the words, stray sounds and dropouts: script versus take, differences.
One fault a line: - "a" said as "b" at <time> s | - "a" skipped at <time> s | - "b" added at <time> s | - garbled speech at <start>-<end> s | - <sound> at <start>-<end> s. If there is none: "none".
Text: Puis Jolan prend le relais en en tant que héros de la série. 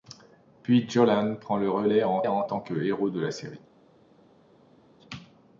none